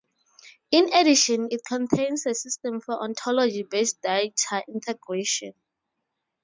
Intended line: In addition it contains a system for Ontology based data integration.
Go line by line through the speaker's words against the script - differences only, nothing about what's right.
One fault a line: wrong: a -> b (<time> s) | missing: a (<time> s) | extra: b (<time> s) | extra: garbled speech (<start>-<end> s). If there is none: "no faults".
no faults